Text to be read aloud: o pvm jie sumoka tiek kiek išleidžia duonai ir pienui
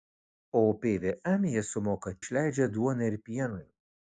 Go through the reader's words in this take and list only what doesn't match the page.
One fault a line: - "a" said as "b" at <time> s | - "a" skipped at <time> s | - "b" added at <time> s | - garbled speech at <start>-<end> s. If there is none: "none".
- "tiek kiek" skipped at 2.1 s